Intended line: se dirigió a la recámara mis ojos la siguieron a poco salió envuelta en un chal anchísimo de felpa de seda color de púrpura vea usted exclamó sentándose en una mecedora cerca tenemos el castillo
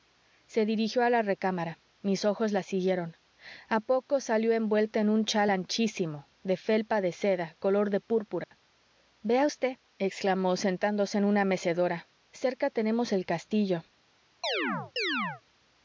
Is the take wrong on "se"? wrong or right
right